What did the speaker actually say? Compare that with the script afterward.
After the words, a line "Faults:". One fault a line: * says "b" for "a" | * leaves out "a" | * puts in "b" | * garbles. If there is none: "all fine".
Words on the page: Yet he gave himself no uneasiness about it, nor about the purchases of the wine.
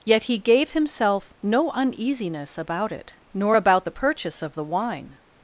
Yet he gave himself no uneasiness about it, nor about the purchase of the wine.
Faults:
* says "purchase" for "purchases"